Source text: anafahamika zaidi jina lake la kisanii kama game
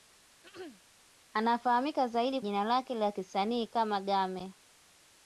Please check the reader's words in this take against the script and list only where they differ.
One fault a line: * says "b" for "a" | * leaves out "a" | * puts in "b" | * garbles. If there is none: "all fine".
all fine